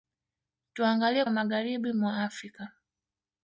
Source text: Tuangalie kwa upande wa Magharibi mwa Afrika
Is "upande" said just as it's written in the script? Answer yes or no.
no